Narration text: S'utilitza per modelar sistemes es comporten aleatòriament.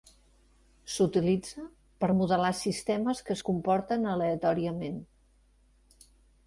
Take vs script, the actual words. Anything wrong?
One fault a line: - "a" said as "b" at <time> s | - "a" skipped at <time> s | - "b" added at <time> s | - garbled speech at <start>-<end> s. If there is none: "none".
- "que" added at 3.3 s